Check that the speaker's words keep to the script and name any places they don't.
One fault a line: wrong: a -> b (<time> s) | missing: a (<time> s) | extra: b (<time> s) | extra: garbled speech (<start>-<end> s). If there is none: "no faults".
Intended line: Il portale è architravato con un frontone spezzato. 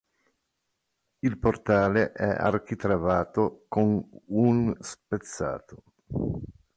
missing: frontone (4.7 s)